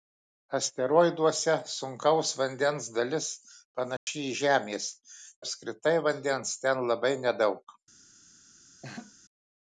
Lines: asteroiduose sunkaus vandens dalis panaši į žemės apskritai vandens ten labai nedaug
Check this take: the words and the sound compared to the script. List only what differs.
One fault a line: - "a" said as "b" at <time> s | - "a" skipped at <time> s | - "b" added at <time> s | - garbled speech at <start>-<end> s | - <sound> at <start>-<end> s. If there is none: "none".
- dropout at 4.0-4.1 s
- laugh at 8.8-9.1 s